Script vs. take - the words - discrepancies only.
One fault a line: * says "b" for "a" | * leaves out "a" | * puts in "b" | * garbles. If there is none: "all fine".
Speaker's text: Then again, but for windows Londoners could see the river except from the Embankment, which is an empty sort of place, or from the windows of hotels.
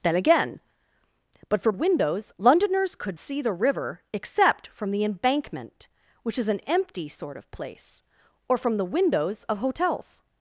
all fine